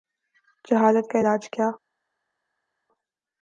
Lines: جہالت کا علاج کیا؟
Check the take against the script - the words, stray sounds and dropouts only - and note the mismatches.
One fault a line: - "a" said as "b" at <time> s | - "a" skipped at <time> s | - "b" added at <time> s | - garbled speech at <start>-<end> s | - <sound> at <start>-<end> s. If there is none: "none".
none